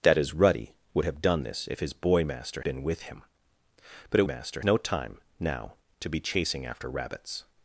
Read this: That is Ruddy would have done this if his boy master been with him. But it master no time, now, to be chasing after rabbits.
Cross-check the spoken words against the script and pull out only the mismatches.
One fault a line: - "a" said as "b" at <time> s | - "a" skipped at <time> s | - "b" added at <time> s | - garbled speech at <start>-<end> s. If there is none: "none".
none